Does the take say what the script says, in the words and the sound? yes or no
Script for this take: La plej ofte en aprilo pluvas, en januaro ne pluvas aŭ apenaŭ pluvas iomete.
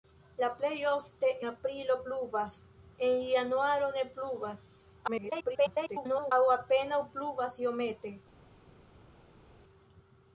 no